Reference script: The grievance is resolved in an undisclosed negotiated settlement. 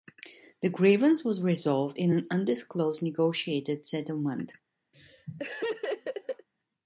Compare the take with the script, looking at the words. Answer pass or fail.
fail